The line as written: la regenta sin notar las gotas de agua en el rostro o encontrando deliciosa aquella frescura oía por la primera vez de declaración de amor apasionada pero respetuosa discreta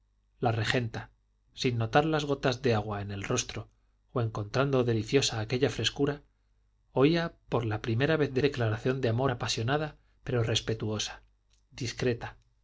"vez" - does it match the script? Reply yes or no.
yes